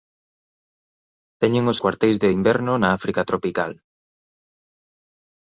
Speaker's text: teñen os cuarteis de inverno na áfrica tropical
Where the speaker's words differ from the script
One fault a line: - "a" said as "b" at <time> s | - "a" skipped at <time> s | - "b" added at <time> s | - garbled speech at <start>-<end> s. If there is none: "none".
none